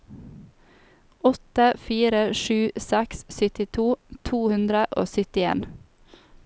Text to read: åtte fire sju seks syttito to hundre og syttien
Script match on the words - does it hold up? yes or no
yes